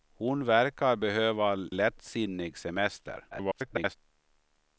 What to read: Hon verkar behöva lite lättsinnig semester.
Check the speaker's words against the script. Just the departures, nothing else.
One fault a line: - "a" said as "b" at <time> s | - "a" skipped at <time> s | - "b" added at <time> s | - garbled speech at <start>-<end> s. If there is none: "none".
- "lite" skipped at 1.6 s
- garbled speech at 3.3-4.0 s